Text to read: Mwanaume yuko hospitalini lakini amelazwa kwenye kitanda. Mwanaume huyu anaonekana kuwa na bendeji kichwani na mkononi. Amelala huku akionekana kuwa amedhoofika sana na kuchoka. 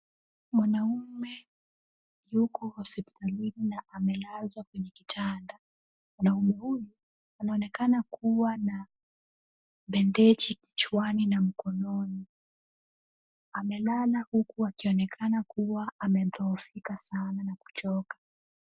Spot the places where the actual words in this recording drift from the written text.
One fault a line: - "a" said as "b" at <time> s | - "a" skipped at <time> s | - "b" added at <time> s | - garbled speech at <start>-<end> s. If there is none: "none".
- "lakini" said as "na" at 3.6 s